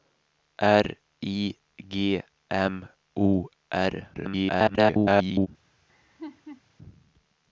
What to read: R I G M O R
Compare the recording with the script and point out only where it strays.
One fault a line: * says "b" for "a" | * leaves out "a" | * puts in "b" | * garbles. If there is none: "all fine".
* garbles